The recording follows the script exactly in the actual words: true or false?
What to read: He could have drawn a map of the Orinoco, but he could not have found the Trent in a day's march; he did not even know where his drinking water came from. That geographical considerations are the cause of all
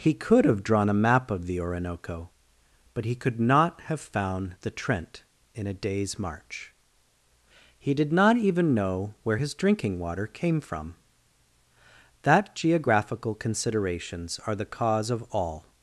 true